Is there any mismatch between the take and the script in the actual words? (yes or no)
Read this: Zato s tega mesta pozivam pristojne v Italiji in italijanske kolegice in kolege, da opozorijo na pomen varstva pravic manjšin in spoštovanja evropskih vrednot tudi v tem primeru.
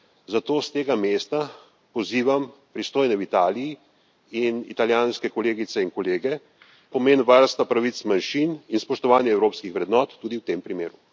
yes